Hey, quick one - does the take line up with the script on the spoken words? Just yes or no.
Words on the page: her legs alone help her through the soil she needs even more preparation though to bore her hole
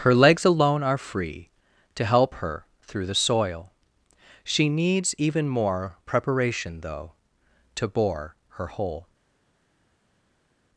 no